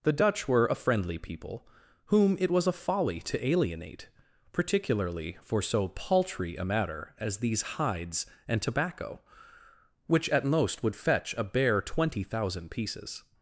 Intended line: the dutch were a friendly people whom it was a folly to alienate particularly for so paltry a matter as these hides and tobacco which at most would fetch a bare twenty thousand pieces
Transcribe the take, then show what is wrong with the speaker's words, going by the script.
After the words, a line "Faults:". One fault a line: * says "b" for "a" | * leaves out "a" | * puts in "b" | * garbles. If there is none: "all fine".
the dutch were a friendly people whom it was a folly to alienate particularly for so paltry a matter as these hides and tobacco which at most would fetch a bare twenty thousand pieces
Faults:
all fine